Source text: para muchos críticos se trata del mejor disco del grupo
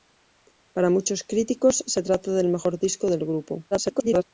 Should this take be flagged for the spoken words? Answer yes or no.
yes